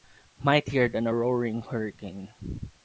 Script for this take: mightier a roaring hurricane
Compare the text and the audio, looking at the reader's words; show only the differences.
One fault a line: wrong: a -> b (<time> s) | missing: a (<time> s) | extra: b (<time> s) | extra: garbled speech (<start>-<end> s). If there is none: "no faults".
extra: than (0.9 s)